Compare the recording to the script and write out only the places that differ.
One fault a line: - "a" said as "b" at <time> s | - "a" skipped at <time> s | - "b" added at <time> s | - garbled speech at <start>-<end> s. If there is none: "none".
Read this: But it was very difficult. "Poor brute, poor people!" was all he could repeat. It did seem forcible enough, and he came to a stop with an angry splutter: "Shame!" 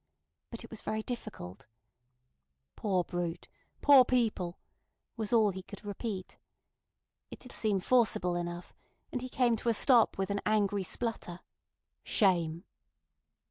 none